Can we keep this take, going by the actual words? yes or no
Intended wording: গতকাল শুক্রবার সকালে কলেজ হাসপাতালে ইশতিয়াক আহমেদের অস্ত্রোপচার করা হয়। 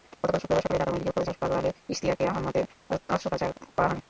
no